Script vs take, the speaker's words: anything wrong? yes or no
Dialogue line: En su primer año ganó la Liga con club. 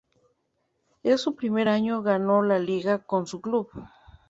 yes